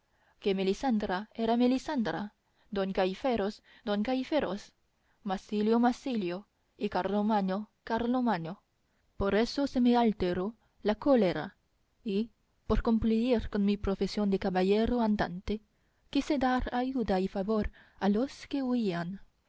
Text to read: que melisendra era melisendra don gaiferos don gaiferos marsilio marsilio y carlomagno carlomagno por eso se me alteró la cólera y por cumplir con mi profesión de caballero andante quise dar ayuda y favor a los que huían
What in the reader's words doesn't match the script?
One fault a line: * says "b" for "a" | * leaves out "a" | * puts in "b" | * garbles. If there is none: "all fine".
all fine